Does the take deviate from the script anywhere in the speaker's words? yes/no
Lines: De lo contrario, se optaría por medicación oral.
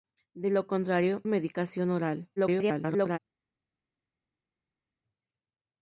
yes